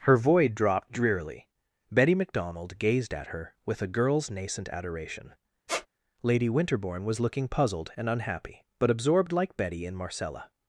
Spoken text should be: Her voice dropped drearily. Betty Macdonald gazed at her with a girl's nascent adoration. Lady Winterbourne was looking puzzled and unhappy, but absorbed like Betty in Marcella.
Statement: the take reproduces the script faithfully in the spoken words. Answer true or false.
false